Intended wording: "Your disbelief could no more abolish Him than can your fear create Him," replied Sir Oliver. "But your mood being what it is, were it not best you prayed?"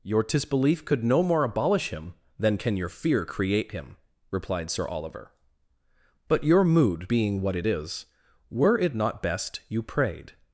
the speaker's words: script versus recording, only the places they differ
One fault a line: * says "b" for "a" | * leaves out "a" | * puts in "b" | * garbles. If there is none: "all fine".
all fine